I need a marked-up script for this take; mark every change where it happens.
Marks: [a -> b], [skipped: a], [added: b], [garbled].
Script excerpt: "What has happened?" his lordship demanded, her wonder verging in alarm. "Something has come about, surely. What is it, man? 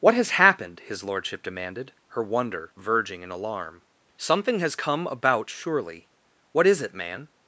"What has happened?" his lordship demanded, her wonder verging in alarm. "Something has come about, surely. What is it, man?